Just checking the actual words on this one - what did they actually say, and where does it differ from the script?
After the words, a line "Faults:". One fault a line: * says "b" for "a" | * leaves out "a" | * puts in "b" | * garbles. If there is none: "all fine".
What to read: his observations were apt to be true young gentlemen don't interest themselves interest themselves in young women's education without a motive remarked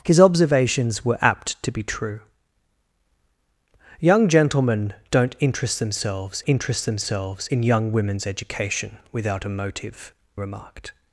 his observations were apt to be true young gentlemen don't interest themselves interest themselves in young women's education without a motive remarked
Faults:
all fine